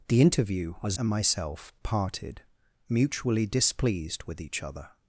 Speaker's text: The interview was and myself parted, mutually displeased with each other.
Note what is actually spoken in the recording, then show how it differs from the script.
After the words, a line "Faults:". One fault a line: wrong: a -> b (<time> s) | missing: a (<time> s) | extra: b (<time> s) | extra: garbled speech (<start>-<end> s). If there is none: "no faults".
The interview was and myself parted, mutually displeased with each other.
Faults:
no faults